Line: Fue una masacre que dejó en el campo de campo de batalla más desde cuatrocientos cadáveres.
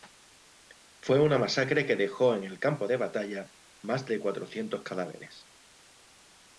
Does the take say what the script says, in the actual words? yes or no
no